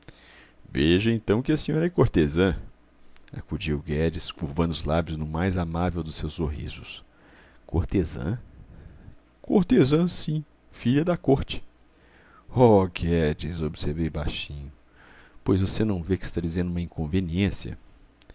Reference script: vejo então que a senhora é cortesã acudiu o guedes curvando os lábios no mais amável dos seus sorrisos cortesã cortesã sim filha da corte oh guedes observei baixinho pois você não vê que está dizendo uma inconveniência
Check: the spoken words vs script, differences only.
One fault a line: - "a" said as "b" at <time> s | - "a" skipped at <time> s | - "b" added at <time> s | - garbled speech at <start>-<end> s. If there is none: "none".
none